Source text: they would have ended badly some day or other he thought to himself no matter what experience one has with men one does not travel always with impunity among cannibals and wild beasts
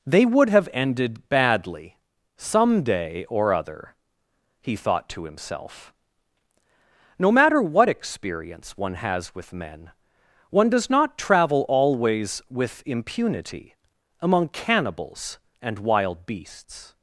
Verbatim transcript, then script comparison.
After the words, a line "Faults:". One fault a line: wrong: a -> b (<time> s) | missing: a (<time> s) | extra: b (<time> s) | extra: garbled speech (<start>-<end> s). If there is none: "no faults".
they would have ended badly some day or other he thought to himself no matter what experience one has with men one does not travel always with impunity among cannibals and wild beasts
Faults:
no faults